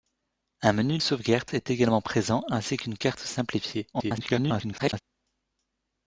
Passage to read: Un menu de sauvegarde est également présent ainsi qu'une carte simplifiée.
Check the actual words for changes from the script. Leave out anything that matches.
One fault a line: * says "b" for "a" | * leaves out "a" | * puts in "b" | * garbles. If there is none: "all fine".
* leaves out "de"
* garbles